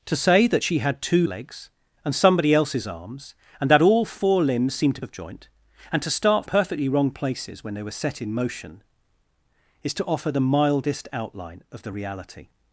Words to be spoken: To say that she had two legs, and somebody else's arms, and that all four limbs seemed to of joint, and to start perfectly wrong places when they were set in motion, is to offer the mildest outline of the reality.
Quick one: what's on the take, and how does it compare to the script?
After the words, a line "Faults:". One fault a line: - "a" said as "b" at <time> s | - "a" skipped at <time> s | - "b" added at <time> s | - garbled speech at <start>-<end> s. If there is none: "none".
To say that she had two legs, and somebody else's arms, and that all four limbs seemed to of joint, and to start perfectly wrong places when they were set in motion, is to offer the mildest outline of the reality.
Faults:
none